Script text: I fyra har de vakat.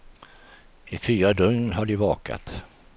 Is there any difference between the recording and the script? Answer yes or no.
yes